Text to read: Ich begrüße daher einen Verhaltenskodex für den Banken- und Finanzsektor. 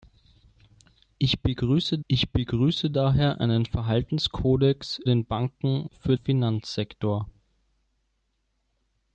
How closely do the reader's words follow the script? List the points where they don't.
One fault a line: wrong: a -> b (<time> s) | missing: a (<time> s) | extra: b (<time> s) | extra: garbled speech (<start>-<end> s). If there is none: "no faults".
extra: ich begrüße (2.1 s)
missing: für (5.0 s)
wrong: und -> für (5.9 s)